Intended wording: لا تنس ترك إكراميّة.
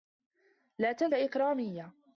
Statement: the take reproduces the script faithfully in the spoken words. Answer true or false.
false